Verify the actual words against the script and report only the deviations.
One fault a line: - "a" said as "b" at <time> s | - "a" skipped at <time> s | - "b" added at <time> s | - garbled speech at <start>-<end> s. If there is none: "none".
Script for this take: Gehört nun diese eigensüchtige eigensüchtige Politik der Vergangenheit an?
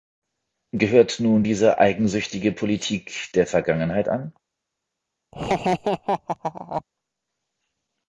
- "eigensüchtige" skipped at 2.5 s